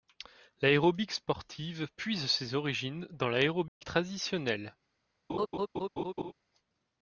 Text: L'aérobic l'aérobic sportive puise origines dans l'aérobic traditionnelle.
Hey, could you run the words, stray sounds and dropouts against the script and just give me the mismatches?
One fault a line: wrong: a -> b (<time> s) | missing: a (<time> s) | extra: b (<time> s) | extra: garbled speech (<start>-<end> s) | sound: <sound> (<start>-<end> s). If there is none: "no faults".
missing: l'aérobic (1.1 s)
extra: ses (2.2 s)
sound: dropout (3.7-3.8 s)
sound: laugh (5.3-6.3 s)